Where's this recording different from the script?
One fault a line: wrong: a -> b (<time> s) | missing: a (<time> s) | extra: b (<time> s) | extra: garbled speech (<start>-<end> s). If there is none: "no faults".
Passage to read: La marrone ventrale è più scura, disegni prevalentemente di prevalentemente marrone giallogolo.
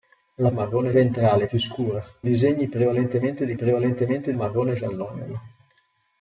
no faults